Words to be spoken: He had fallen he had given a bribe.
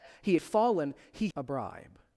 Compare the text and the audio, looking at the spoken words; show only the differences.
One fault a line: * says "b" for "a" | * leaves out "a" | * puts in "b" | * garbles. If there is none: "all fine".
* leaves out "had"
* leaves out "had given"